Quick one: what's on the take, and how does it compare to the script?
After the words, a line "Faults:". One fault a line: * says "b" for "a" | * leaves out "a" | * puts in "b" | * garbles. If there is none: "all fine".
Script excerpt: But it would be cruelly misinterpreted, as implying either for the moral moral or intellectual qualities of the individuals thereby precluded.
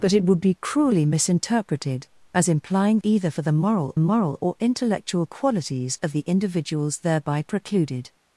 But it would be cruelly misinterpreted, as implying either for the moral moral or intellectual qualities of the individuals thereby precluded.
Faults:
all fine